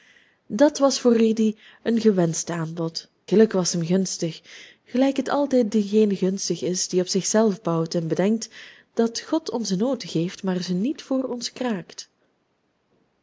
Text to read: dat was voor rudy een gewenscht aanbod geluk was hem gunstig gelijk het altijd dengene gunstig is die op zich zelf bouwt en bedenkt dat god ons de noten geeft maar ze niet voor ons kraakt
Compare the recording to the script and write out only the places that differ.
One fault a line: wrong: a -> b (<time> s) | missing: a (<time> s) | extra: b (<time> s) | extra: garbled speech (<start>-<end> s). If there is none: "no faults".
no faults